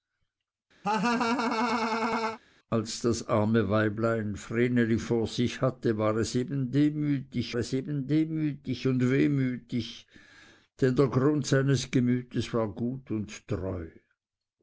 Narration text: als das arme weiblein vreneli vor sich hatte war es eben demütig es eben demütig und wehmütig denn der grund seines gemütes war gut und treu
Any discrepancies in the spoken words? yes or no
no